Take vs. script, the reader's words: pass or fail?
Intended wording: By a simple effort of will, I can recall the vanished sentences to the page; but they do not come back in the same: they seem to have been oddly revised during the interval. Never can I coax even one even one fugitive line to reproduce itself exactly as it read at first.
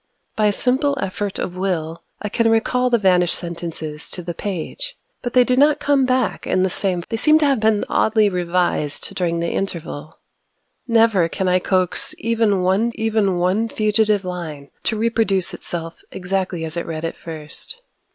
pass